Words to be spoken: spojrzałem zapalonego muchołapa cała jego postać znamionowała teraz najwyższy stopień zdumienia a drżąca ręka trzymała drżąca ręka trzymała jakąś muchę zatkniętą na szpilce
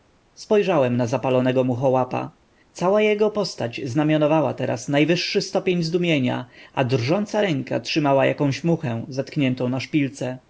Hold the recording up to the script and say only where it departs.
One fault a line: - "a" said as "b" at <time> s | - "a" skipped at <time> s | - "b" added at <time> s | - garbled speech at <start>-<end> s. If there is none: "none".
- "na" added at 1.0 s
- "drżąca ręka trzymała" skipped at 8.2 s